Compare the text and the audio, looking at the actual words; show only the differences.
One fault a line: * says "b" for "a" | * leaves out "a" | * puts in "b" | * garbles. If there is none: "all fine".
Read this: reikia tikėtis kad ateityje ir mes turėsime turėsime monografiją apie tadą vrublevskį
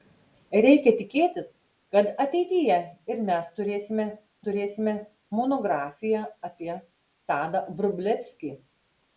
all fine